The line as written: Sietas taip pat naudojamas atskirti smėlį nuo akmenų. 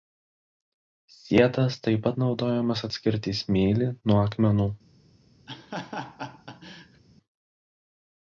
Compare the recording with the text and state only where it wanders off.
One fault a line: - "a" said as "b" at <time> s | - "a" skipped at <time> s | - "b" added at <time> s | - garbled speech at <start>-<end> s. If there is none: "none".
none